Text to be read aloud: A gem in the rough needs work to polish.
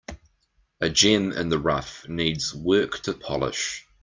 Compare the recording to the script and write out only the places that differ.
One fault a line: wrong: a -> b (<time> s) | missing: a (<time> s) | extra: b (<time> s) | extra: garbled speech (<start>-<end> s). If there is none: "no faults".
no faults